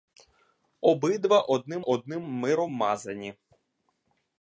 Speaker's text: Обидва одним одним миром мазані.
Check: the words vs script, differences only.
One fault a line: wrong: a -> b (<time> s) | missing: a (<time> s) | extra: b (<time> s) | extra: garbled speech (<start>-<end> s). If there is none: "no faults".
no faults